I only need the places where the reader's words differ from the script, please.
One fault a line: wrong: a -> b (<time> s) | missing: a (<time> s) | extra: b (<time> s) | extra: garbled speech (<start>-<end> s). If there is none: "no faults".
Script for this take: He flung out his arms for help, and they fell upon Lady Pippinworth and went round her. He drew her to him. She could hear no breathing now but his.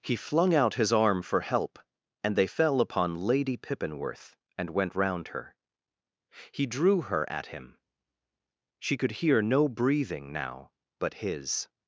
wrong: arms -> arm (0.9 s)
wrong: to -> at (7.3 s)